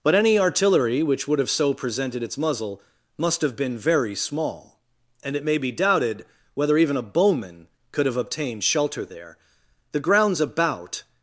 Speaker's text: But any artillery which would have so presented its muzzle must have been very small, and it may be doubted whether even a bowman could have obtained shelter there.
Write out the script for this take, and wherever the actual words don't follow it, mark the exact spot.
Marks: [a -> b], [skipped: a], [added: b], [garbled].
But any artillery which would have so presented its muzzle must have been very small, and it may be doubted whether even a bowman could have obtained shelter there. [added: The grounds about]